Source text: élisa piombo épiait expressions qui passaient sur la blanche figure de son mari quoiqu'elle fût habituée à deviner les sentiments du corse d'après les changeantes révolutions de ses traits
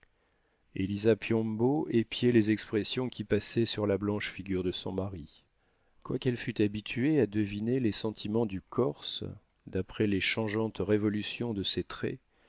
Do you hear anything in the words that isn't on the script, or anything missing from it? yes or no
yes